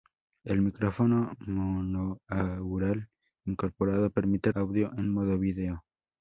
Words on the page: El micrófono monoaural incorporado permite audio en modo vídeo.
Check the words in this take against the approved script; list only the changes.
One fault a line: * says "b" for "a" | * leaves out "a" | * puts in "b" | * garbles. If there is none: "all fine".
all fine